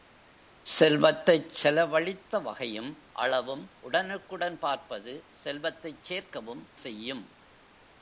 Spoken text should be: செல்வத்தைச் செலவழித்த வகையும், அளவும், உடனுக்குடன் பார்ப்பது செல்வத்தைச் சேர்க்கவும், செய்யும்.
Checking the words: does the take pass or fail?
pass